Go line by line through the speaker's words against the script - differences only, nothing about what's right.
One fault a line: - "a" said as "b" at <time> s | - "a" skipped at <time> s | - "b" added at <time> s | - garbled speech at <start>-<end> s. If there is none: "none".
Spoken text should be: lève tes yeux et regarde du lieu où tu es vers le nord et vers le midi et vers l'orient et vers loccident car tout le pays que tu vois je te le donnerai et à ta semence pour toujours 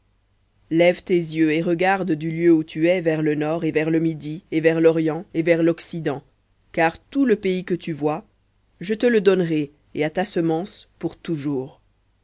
none